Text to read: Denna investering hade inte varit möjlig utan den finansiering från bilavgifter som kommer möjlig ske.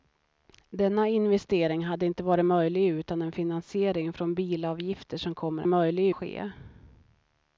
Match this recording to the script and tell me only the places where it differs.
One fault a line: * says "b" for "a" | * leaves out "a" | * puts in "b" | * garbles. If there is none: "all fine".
all fine